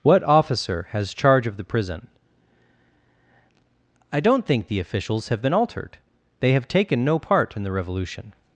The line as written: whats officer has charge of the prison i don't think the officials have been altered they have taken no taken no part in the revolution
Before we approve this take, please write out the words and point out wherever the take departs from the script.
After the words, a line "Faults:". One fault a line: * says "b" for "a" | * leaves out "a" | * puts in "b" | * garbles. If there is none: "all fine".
what officer has charge of the prison i don't think the officials have been altered they have taken no part in the revolution
Faults:
* says "what" for "whats"
* leaves out "taken no"